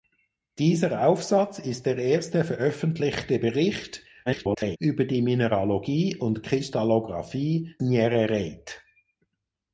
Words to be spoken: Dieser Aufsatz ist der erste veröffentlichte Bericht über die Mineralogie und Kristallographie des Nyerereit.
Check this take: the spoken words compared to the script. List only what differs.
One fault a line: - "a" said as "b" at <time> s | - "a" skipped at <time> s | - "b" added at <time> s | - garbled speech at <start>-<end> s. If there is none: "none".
- garbled speech at 4.3-4.8 s
- "des" skipped at 7.8 s